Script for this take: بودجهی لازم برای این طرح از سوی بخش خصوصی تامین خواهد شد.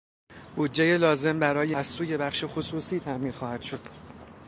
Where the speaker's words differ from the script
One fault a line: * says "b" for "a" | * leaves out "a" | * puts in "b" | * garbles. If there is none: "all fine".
* leaves out "این طرح"